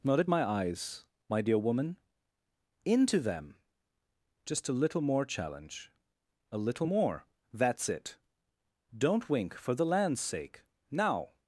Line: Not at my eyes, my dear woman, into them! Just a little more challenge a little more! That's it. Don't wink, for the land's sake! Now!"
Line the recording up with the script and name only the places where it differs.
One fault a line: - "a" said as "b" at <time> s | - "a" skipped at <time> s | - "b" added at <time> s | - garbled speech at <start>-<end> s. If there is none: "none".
none